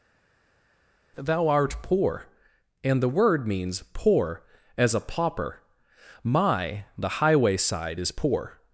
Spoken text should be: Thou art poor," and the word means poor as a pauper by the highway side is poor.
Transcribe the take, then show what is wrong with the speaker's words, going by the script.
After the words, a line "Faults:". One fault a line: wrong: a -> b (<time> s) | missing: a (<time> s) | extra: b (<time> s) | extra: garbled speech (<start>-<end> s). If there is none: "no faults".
Thou art poor," and the word means poor as a pauper my the highway side is poor.
Faults:
wrong: by -> my (6.2 s)